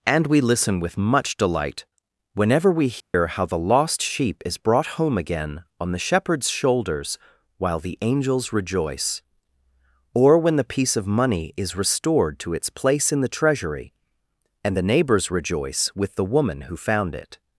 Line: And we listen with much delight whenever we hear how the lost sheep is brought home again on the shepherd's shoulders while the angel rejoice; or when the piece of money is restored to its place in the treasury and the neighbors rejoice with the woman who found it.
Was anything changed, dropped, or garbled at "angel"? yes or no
yes